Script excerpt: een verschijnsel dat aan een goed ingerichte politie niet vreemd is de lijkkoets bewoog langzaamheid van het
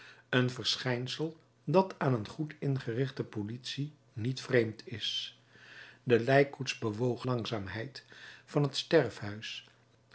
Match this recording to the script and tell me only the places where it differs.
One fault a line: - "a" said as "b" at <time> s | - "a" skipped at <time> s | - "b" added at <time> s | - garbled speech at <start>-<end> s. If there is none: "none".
none